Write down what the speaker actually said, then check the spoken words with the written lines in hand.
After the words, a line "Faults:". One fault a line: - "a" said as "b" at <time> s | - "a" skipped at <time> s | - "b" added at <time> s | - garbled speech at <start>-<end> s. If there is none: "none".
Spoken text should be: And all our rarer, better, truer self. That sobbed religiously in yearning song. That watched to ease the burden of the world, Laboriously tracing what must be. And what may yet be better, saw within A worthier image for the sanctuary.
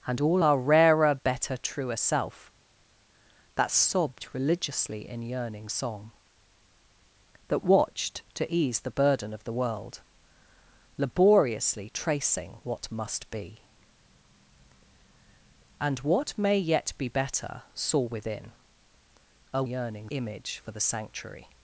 And all our rarer, better, truer self. That sobbed religiously in yearning song. That watched to ease the burden of the world, Laboriously tracing what must be. And what may yet be better, saw within A yearning image for the sanctuary.
Faults:
- "worthier" said as "yearning" at 19.6 s